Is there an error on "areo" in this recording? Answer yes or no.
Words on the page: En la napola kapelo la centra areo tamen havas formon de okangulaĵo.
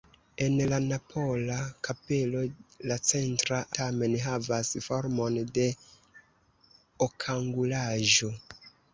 yes